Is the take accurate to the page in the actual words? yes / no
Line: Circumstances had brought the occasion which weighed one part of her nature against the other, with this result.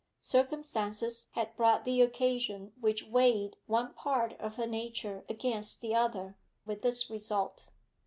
yes